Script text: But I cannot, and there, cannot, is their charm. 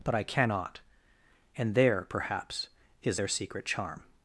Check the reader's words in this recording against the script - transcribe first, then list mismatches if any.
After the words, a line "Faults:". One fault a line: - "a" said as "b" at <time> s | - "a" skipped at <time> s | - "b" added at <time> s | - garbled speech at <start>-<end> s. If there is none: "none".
But I cannot, and there, perhaps, is their secret charm.
Faults:
- "cannot" said as "perhaps" at 2.1 s
- "secret" added at 3.3 s